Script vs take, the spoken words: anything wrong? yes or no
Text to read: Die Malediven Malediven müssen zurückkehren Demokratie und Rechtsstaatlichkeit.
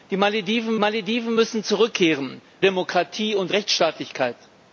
no